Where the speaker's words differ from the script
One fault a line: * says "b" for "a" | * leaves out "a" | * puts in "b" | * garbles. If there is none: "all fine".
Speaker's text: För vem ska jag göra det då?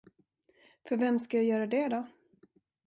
all fine